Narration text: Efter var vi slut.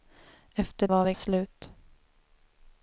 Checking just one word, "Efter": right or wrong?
right